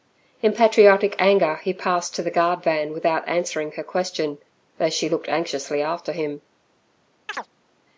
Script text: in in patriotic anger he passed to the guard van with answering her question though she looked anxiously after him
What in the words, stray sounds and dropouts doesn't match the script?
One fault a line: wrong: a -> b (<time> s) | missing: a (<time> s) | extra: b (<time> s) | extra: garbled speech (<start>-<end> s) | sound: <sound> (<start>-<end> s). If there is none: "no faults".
missing: in (0.5 s)
wrong: with -> without (2.9 s)
sound: chirp (7.3-7.5 s)